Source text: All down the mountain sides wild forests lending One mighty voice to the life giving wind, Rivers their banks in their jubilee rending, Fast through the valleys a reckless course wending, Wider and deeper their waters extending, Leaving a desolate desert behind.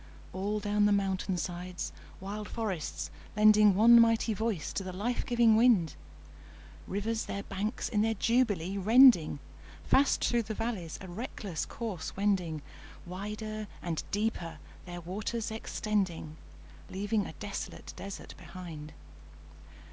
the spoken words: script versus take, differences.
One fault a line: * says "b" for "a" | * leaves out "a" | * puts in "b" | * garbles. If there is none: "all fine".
all fine